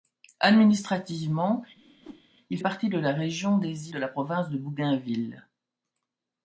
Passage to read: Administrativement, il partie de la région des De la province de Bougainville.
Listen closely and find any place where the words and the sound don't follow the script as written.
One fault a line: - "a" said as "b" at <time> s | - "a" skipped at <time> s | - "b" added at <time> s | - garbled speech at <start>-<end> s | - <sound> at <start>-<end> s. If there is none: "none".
- whoosh at 1.7-2.3 s